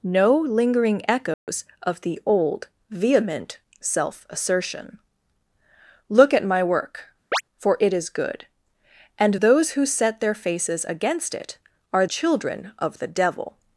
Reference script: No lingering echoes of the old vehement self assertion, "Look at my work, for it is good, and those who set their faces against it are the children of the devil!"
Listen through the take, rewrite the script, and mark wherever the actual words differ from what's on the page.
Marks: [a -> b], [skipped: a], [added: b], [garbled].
No lingering echoes of the old vehement self assertion, "Look at my work, for it is good, and those who set their faces against it are [skipped: the] children of the devil!"